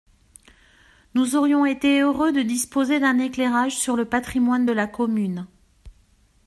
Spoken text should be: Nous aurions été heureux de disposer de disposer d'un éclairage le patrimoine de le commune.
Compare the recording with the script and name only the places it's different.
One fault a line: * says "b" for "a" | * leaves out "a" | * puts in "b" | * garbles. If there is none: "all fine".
* leaves out "de disposer"
* puts in "sur"
* says "la" for "le"